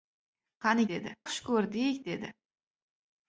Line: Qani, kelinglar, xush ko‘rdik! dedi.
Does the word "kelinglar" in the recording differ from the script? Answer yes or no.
yes